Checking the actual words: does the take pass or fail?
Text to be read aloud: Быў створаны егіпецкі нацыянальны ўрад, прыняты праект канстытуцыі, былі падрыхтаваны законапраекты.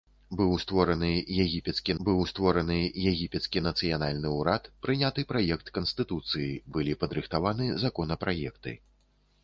fail